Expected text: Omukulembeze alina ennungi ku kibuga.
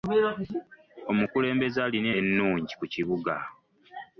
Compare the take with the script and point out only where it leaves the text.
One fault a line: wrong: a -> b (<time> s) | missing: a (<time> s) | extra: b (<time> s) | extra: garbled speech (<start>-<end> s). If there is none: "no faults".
no faults